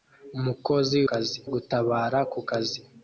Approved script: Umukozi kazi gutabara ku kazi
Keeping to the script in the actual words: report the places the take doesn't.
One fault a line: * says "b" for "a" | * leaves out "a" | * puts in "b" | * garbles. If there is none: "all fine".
all fine